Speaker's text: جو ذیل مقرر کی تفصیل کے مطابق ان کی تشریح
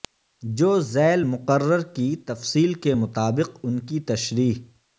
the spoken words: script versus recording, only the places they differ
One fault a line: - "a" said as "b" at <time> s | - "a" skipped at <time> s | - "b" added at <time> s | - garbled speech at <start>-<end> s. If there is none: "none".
none